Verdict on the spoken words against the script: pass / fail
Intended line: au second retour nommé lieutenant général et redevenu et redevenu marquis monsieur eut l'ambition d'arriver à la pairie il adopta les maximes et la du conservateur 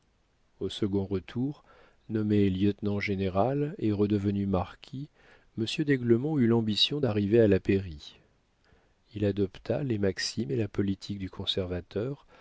fail